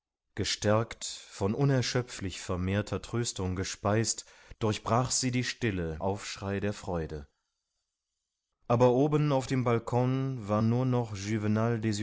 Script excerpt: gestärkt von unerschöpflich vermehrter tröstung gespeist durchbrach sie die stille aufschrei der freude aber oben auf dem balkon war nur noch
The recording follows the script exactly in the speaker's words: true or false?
true